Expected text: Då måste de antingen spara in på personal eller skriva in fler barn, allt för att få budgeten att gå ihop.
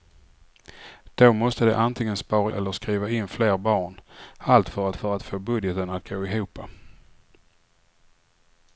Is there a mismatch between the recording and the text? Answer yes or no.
yes